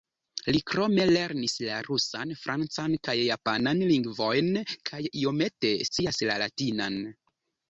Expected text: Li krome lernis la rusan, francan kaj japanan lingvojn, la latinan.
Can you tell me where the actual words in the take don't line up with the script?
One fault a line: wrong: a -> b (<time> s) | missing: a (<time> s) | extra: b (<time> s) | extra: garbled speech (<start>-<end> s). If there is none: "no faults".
extra: kaj iomete scias (4.9 s)